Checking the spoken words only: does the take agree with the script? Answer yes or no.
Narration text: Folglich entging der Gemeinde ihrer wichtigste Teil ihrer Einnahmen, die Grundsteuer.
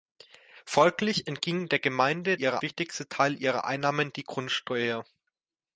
yes